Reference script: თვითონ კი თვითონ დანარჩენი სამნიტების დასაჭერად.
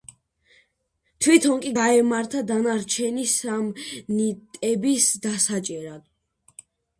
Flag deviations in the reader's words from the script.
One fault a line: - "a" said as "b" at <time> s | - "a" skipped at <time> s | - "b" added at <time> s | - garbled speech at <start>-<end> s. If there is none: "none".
- "თვითონ" said as "გაემართა" at 1.8 s